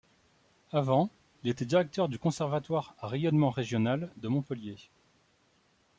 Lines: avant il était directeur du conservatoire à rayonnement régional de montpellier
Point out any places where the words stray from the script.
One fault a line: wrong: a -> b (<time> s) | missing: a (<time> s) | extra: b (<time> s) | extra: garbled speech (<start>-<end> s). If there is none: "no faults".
no faults